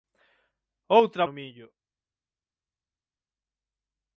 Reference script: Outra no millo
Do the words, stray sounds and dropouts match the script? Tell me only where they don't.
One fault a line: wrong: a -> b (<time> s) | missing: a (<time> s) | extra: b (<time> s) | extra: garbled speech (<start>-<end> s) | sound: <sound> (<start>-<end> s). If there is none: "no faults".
no faults